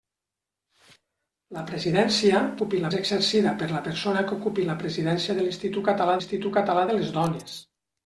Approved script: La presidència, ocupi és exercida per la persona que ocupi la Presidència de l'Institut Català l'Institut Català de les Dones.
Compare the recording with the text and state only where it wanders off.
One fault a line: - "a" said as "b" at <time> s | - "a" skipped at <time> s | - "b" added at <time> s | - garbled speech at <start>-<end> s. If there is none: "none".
none